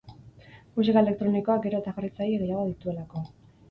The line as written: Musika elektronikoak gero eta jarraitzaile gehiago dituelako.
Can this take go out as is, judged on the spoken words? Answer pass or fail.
pass